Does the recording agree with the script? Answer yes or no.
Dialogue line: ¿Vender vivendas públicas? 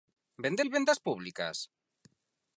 yes